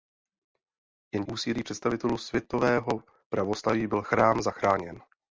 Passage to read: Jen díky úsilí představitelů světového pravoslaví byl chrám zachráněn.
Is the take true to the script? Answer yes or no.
no